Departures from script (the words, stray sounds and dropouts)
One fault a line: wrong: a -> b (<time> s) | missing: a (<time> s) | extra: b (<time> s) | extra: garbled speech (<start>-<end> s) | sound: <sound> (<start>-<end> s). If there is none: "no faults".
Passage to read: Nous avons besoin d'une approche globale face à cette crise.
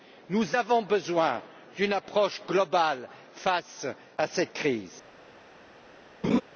sound: laugh (6.2-6.4 s)